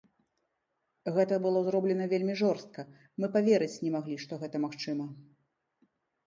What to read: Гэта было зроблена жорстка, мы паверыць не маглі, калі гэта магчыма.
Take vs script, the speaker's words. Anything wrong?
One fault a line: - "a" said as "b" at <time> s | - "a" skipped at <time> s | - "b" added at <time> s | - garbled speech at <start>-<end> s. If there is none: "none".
- "вельмі" added at 2.1 s
- "калі" said as "што" at 4.2 s